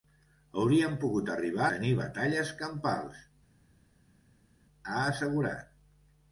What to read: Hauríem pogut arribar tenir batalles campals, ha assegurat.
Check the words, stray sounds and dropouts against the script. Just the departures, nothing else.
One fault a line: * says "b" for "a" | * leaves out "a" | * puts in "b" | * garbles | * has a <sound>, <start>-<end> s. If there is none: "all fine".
all fine